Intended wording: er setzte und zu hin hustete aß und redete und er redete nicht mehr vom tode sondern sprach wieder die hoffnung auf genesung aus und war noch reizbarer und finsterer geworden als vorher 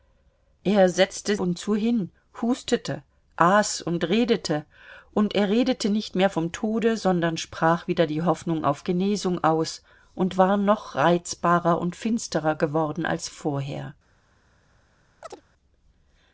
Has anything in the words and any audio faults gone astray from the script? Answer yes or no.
yes